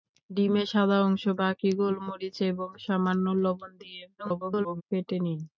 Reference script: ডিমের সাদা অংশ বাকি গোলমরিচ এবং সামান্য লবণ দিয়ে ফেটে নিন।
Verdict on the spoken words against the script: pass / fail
fail